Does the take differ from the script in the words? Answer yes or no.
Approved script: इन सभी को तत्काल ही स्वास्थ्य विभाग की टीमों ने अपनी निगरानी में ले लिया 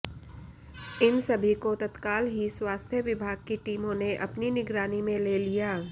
no